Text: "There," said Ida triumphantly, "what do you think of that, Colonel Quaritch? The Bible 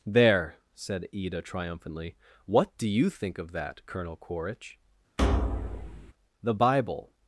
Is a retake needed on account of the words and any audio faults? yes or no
yes